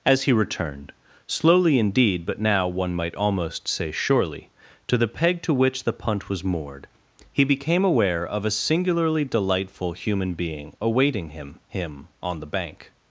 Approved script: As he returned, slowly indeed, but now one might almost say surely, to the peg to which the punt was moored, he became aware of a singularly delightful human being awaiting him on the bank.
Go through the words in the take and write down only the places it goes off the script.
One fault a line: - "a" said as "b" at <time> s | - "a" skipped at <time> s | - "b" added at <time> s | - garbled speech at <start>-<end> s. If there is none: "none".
- "him" added at 11.7 s